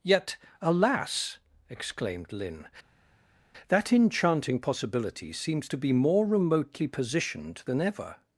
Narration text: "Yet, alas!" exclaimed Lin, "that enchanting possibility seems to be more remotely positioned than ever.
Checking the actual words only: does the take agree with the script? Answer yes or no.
yes